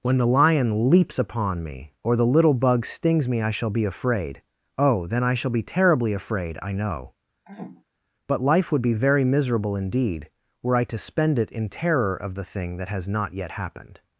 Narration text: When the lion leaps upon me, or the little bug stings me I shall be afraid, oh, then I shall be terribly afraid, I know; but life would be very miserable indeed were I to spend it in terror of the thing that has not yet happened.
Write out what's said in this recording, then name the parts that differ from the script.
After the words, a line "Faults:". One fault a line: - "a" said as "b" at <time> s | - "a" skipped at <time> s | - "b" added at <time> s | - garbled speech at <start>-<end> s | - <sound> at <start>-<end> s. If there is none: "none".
When the lion leaps upon me, or the little bug stings me I shall be afraid, oh, then I shall be terribly afraid, I know; but life would be very miserable indeed were I to spend it in terror of the thing that has not yet happened.
Faults:
- throat clearing at 7.5-7.8 s